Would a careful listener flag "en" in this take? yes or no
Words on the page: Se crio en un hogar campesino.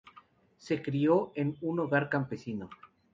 no